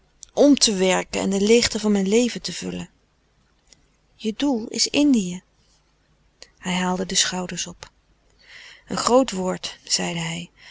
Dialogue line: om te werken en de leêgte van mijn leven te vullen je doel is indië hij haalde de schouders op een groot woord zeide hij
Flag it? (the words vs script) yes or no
no